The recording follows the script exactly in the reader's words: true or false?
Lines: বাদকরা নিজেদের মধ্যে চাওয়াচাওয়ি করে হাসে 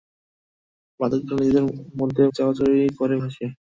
true